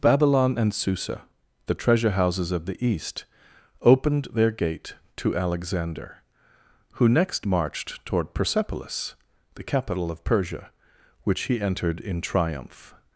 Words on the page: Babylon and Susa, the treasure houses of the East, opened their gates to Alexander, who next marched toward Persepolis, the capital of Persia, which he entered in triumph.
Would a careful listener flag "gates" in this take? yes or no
yes